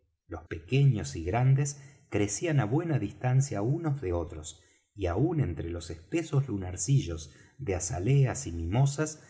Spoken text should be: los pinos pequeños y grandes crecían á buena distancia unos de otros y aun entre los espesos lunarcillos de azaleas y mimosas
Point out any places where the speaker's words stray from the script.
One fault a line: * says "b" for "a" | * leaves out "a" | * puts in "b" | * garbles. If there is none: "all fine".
* leaves out "pinos"